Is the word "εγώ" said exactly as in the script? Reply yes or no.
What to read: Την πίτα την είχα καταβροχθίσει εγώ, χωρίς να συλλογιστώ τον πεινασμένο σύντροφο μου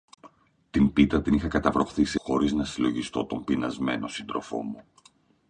no